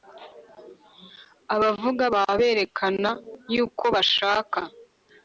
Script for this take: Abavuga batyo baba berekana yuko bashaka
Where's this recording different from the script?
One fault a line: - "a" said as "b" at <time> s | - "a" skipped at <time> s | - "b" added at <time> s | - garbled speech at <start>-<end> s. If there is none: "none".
- "batyo" skipped at 2.0 s